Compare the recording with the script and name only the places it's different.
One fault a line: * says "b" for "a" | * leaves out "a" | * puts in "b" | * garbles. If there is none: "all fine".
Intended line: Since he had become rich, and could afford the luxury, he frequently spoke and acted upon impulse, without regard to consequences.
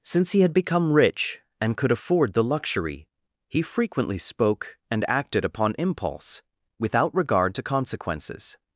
all fine